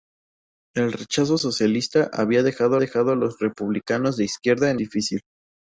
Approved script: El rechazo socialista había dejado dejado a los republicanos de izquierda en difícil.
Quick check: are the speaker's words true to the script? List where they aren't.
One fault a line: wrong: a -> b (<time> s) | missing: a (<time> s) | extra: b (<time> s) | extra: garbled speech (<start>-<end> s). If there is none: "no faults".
no faults